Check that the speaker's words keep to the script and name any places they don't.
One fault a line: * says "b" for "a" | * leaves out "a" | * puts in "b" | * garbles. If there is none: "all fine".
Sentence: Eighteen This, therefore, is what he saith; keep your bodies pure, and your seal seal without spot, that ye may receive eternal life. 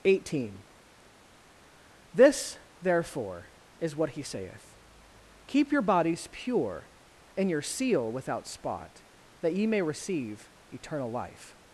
* leaves out "seal"